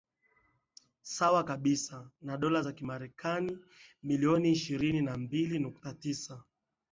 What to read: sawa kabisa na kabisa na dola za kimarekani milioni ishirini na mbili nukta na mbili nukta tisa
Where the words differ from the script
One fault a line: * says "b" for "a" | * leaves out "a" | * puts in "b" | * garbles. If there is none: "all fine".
* leaves out "kabisa na"
* leaves out "na mbili nukta"